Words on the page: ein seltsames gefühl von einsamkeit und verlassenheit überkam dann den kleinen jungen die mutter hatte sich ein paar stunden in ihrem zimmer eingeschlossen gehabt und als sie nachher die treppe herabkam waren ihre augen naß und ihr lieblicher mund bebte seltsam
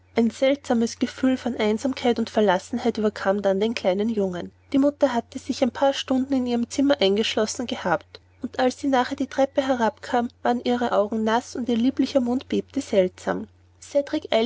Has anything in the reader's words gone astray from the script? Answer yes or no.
no